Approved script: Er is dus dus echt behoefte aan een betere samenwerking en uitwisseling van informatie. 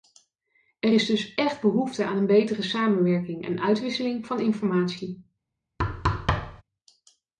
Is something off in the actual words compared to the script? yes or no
yes